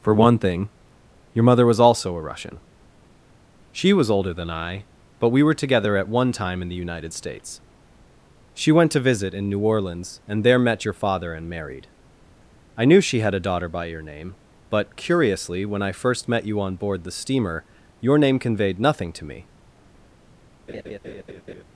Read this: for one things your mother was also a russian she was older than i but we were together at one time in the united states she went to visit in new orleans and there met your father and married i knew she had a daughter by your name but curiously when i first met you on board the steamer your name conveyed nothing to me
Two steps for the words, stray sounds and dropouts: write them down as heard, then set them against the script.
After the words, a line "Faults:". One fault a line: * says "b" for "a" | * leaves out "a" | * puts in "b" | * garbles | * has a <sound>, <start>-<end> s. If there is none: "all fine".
for one thing your mother was also a russian she was older than i but we were together at one time in the united states she went to visit in new orleans and there met your father and married i knew she had a daughter by your name but curiously when i first met you on board the steamer your name conveyed nothing to me
Faults:
* says "thing" for "things"
* has a laugh, 20.7-21.6 s